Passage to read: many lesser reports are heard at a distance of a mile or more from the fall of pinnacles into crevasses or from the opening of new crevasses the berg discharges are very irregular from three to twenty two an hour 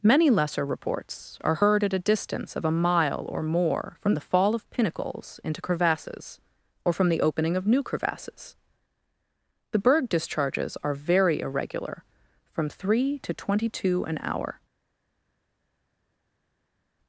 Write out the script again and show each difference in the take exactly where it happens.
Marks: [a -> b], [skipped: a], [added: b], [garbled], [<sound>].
many lesser reports are heard at a distance of a mile or more from the fall of pinnacles into crevasses or from the opening of new crevasses the berg discharges are very irregular from three to twenty two an hour